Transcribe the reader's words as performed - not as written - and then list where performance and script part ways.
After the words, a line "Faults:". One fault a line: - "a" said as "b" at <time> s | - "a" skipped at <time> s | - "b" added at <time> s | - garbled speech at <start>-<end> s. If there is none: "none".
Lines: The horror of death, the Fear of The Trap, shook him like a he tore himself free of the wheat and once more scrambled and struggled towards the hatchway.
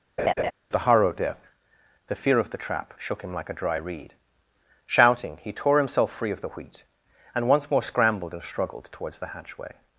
The horror of death, the Fear of The Trap, shook him like a dry reed. Shouting, he tore himself free of the wheat and once more scrambled and struggled towards the hatchway.
Faults:
- "dry reed Shouting" added at 3.6 s